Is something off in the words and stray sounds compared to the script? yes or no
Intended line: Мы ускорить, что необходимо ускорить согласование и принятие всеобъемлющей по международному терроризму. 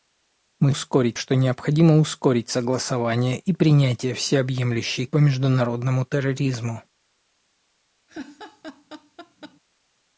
yes